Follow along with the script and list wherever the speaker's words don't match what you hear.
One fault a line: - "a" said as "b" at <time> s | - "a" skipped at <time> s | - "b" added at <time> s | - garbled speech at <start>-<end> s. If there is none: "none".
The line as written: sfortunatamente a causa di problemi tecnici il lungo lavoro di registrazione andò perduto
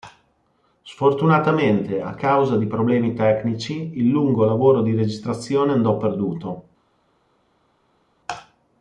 none